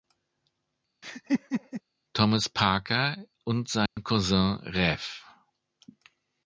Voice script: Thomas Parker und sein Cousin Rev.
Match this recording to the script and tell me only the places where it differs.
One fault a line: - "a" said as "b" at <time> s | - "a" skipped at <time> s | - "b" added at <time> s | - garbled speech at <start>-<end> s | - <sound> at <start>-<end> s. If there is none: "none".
- laugh at 1.0-1.8 s
- dropout at 3.9-4.0 s